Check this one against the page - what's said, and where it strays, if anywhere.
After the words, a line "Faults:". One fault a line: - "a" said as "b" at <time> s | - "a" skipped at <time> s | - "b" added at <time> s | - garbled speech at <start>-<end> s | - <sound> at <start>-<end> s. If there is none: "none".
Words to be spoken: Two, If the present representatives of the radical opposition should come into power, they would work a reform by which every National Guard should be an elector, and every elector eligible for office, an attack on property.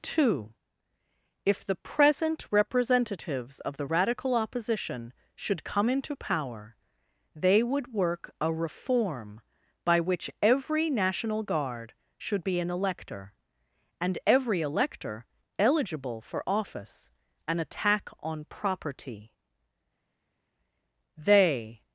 Two, If the present representatives of the radical opposition should come into power, they would work a reform by which every National Guard should be an elector, and every elector eligible for office, an attack on property. They.
Faults:
- "They" added at 21.2 s